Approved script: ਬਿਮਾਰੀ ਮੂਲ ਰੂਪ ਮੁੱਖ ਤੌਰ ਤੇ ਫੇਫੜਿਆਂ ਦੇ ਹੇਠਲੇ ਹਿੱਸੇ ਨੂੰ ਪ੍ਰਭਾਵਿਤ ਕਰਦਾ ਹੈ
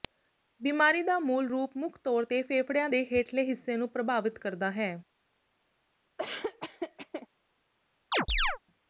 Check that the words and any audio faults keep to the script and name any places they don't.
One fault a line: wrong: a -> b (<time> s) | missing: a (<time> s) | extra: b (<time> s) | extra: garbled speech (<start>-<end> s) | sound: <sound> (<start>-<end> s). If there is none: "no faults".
extra: ਦਾ (1.0 s)
sound: laugh (6.2-7.3 s)
sound: chirp (8.1-8.6 s)